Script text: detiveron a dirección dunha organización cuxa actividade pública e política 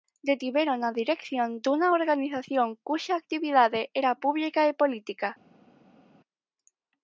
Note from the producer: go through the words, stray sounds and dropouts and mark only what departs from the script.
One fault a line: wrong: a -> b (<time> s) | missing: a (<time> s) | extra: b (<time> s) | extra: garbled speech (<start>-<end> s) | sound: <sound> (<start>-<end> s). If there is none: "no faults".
extra: era (4.0 s)